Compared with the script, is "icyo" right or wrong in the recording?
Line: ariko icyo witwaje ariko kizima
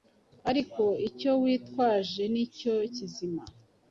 right